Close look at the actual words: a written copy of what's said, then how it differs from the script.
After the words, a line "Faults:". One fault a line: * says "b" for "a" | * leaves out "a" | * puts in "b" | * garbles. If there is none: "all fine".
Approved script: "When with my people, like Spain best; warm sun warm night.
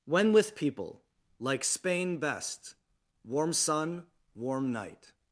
"When with people, like Spain best; warm sun warm night.
Faults:
* leaves out "my"